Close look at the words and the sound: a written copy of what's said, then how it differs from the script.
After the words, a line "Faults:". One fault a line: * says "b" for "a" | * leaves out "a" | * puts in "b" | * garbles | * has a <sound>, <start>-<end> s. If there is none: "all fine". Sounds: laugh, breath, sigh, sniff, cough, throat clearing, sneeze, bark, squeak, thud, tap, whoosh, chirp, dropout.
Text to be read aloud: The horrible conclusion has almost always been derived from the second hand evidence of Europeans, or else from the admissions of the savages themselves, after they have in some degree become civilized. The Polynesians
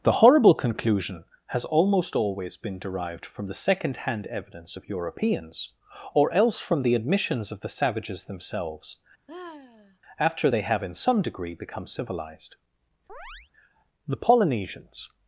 The horrible conclusion has almost always been derived from the second hand evidence of Europeans, or else from the admissions of the savages themselves, after they have in some degree become civilized. The Polynesians
Faults:
* has a sigh, 9.3-10.0 s
* has a chirp, 13.1-13.5 s